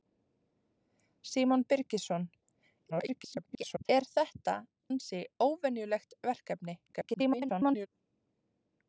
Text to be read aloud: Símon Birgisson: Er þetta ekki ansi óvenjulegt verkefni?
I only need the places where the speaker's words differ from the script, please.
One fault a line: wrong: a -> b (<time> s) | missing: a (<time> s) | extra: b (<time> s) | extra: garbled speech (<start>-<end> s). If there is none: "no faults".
extra: garbled speech (2.9-3.9 s)
missing: ekki (4.6 s)
extra: garbled speech (6.9-7.9 s)